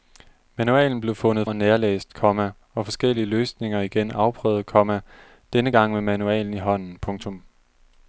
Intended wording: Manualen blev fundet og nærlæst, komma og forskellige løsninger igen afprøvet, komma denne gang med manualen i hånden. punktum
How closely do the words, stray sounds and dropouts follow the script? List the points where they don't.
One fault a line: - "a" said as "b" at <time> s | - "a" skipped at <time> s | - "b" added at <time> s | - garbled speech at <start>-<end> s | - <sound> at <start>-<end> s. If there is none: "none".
none